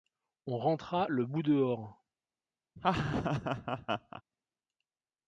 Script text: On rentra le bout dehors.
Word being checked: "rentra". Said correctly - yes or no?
yes